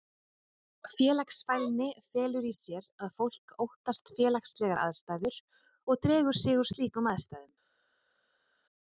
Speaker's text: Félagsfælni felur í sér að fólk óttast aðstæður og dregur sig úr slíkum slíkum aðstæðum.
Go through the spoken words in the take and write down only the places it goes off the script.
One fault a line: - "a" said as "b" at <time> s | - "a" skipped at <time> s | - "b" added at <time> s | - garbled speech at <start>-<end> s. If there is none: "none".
- "félagslegar" added at 4.2 s
- "slíkum" skipped at 7.1 s